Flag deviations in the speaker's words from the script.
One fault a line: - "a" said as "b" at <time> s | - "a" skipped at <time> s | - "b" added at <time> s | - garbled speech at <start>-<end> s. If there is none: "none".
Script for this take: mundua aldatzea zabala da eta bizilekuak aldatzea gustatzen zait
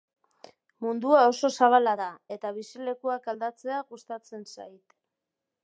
- "aldatzea" said as "oso" at 1.3 s